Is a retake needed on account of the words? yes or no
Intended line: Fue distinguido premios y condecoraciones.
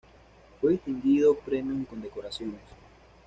no